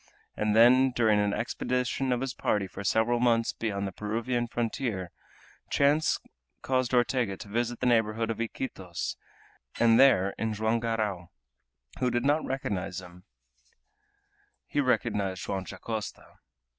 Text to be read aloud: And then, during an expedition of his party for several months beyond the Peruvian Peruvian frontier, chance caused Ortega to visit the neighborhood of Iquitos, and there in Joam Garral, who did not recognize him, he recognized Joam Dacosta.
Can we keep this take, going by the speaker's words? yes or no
no